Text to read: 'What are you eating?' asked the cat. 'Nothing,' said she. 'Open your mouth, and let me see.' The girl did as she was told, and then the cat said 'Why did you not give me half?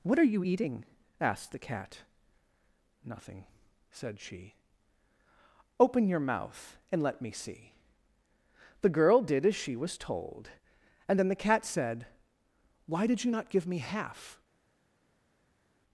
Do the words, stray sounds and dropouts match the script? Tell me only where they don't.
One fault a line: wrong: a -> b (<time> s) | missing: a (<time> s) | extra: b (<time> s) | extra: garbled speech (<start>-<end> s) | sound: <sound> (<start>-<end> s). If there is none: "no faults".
no faults